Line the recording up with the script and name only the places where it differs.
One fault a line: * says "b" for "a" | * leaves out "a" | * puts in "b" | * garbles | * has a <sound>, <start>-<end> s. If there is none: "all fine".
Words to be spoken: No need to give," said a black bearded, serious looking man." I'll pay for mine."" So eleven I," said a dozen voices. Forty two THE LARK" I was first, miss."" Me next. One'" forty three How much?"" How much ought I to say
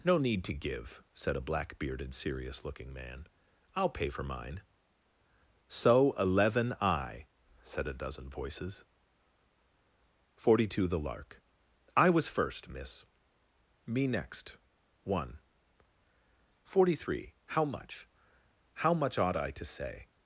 all fine